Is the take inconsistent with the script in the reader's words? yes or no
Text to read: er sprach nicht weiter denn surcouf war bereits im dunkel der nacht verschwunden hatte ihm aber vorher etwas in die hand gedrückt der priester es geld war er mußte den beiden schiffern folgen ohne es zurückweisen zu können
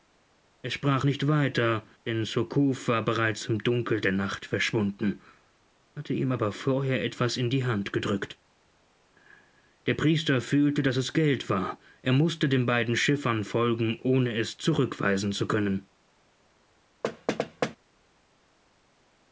yes